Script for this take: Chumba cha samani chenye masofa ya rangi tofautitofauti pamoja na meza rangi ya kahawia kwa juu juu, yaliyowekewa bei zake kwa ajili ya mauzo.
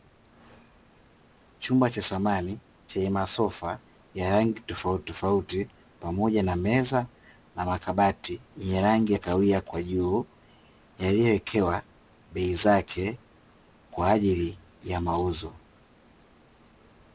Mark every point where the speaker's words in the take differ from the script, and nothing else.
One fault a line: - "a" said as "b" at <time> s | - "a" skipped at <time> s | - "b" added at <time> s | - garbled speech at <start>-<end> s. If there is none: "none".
- "na makabati yenye" added at 7.5 s
- "juu" skipped at 10.3 s